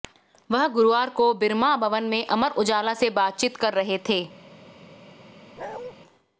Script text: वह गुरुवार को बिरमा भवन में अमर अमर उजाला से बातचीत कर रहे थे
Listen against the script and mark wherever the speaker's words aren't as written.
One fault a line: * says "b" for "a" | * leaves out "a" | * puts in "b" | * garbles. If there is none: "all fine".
* leaves out "अमर"